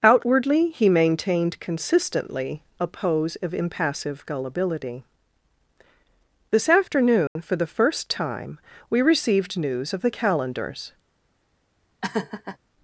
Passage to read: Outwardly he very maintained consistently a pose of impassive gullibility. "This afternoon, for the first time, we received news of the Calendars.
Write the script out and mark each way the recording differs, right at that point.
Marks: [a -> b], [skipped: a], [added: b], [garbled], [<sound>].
Outwardly he [skipped: very] maintained consistently a pose of impassive gullibility. "This afternoon, [dropout] for the first time, we received news of the Calendars. [laugh]